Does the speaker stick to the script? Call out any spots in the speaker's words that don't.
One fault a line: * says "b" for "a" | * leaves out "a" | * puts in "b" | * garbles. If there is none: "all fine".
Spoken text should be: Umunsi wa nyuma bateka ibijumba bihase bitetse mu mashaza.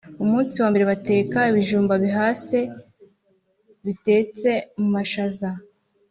* says "mbere" for "nyuma"